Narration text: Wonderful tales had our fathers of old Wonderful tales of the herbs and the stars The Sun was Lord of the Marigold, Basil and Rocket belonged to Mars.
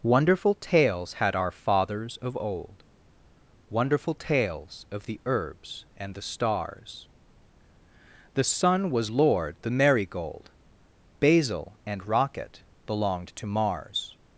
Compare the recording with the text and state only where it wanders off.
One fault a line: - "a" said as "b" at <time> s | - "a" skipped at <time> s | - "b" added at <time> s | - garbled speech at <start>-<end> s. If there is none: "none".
- "of" skipped at 9.6 s